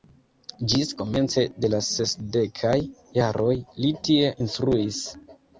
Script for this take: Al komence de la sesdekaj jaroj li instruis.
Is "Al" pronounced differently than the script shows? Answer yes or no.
yes